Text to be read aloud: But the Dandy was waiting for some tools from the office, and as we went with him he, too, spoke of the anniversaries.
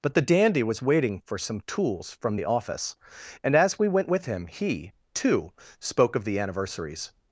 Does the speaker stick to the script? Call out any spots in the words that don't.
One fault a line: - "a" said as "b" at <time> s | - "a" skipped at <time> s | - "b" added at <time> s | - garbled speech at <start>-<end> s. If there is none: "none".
none